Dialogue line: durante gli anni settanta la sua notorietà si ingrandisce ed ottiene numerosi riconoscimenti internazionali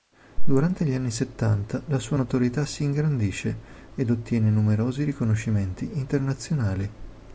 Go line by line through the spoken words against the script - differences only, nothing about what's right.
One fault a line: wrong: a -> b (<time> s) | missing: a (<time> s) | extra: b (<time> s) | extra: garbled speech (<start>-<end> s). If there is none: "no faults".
no faults